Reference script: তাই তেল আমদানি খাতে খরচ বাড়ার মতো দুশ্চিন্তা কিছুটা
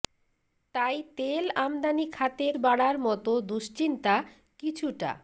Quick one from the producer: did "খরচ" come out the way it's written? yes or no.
no